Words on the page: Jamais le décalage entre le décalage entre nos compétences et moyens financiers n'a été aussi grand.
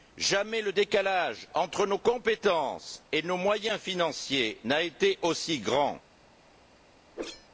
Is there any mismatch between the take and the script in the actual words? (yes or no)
yes